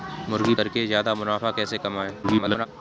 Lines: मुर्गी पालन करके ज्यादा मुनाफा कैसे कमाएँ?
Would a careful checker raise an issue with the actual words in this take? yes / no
yes